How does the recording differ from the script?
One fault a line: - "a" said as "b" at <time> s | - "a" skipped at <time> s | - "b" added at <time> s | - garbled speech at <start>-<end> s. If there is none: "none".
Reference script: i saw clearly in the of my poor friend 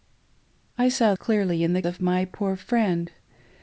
none